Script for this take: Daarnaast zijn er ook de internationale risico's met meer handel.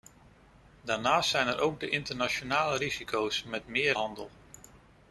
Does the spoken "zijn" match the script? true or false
true